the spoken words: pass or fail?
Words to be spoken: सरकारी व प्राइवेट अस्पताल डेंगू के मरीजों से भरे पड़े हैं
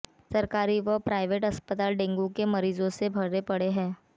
pass